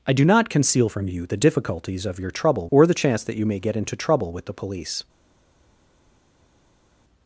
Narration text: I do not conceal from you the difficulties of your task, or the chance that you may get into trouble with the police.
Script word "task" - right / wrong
wrong